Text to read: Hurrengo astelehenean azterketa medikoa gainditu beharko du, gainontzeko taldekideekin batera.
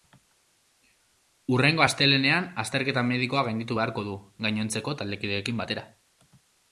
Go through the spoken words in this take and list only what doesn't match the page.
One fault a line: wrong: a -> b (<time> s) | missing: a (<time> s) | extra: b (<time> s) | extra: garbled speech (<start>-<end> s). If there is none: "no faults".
no faults